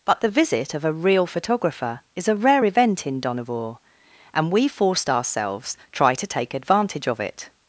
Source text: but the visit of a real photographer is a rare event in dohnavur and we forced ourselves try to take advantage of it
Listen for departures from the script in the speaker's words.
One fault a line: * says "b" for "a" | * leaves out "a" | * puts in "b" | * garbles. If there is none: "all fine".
all fine